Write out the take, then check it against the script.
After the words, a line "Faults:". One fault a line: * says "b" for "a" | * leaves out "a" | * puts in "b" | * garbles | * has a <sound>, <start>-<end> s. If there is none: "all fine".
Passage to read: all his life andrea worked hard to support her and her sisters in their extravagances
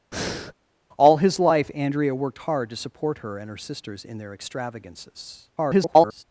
all his life andrea worked hard to support her and her sisters in their extravagances [garbled]
Faults:
* has a breath, 0.1-0.5 s
* garbles